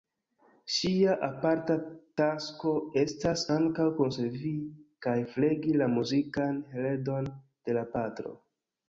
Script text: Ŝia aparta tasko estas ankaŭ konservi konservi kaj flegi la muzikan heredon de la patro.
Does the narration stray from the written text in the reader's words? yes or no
yes